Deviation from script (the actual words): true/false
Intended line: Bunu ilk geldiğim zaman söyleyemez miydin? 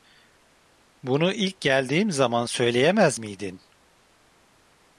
false